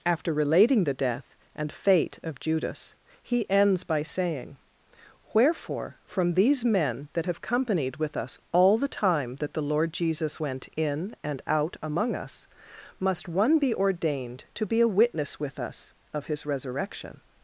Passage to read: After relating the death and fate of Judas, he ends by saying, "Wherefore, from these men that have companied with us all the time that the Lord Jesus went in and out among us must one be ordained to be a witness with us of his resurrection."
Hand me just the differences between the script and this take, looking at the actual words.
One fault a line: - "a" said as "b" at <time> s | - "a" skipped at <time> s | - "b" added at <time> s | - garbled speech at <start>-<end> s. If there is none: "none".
none